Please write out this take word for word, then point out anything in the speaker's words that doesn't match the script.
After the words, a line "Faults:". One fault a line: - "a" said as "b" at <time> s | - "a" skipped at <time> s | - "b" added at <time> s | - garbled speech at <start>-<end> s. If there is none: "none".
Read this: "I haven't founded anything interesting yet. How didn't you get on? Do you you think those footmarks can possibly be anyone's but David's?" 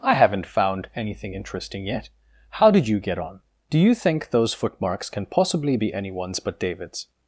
"I haven't found anything interesting yet. How did you get on? Do you think those footmarks can possibly be anyone's but David's?"
Faults:
- "founded" said as "found" at 0.5 s
- "didn't" said as "did" at 2.7 s
- "you" skipped at 3.9 s